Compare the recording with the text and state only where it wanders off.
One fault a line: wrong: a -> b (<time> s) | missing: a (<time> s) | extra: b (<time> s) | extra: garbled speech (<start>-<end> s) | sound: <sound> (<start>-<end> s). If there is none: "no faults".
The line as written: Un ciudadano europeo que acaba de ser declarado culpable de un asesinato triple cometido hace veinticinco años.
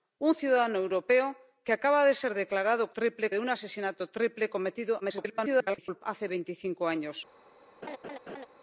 wrong: culpable -> triple (3.0 s)
extra: garbled speech (5.0-6.0 s)
sound: laugh (7.8-8.5 s)